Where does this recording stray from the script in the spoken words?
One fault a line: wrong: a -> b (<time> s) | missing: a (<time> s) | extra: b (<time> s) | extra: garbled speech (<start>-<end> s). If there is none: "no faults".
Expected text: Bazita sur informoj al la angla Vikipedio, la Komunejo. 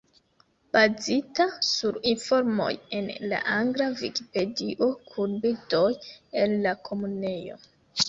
wrong: al -> en (3.0 s)
extra: kun bildoj el (5.1 s)